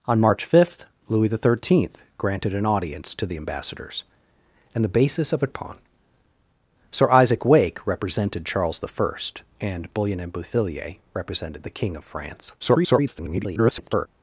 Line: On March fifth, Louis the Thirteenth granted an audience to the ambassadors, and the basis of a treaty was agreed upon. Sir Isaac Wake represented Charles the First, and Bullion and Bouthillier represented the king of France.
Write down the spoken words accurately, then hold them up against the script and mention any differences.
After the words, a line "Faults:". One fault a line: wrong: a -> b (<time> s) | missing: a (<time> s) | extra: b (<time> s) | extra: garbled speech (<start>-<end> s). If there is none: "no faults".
On March fifth, Louis the Thirteenth granted an audience to the ambassadors, and the basis of a upon. Sir Isaac Wake represented Charles the First, and Bullion and Bouthillier represented the king of France. [garbled]
Faults:
missing: treaty was agreed (5.5 s)
extra: garbled speech (12.6-14.1 s)